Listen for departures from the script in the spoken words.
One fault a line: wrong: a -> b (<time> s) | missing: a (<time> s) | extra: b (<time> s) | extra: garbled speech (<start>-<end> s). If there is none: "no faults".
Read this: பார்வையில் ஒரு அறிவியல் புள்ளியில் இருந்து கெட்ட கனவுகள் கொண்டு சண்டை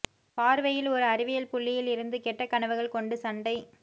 no faults